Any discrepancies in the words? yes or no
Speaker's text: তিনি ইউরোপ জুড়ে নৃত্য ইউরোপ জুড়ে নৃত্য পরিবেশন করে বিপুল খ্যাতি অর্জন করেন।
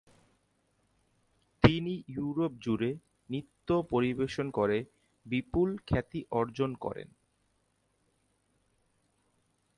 yes